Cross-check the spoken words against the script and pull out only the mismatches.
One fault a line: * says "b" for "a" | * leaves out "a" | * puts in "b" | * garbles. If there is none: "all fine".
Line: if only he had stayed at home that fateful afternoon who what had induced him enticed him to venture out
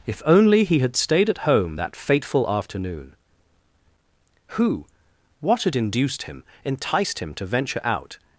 all fine